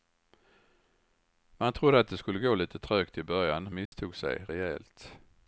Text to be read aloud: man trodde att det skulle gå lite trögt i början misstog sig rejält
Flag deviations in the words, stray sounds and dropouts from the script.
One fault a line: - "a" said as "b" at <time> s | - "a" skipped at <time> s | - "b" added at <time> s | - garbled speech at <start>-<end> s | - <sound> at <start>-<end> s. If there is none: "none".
- dropout at 3.9-3.9 s